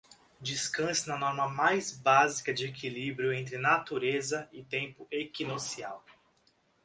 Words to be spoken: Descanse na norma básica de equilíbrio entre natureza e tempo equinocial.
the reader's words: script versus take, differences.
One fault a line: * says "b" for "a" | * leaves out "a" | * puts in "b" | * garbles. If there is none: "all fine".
* puts in "mais"